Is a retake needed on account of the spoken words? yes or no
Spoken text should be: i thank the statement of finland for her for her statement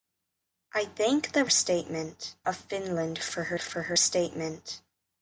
no